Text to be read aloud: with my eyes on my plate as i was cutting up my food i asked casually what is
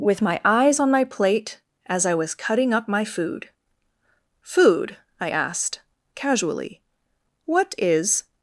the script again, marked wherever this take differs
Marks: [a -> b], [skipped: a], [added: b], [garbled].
with my eyes on my plate as i was cutting up my food [added: food] i asked casually what is